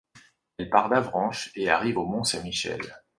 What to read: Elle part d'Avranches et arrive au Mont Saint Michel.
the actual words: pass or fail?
pass